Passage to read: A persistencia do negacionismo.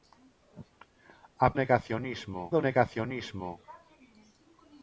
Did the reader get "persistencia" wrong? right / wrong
wrong